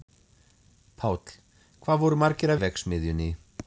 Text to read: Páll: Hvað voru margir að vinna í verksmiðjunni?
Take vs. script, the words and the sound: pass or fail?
fail